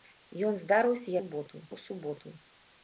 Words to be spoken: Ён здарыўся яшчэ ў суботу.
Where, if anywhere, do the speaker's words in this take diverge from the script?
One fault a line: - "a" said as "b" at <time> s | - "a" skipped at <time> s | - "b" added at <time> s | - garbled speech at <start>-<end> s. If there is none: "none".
- "яшчэ" said as "суботу" at 1.2 s